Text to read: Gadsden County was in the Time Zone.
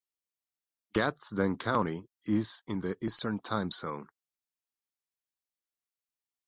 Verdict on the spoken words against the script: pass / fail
fail